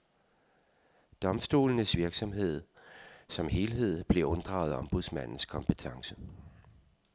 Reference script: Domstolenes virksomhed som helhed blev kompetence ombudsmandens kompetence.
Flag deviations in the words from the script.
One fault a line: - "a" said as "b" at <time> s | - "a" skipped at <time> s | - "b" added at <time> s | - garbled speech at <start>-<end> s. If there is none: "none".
- "kompetence" said as "unddraget" at 4.3 s